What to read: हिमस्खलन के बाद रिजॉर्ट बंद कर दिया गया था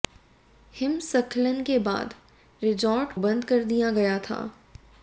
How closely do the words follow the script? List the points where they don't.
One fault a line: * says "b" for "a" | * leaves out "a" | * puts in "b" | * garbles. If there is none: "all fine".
all fine